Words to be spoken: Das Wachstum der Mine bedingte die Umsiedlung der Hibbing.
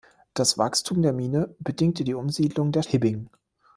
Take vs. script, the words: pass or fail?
pass